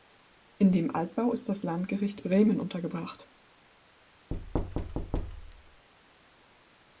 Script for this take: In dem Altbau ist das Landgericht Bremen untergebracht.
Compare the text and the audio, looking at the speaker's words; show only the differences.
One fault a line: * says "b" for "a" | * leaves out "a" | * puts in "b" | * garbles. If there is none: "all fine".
all fine